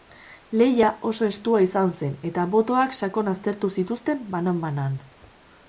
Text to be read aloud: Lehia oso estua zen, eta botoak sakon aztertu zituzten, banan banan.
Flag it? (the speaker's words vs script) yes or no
yes